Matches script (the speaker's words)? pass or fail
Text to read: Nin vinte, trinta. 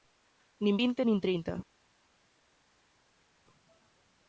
fail